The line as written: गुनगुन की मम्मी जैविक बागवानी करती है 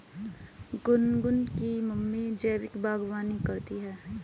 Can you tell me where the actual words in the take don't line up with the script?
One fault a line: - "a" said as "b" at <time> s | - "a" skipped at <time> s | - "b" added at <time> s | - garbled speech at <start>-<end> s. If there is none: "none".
none